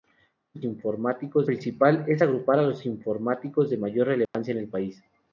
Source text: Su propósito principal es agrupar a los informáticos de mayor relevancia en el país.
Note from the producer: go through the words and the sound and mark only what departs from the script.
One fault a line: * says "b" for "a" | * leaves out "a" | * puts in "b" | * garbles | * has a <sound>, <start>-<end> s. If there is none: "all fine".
* says "informáticos" for "propósito"
* has a dropout, 4.2-4.3 s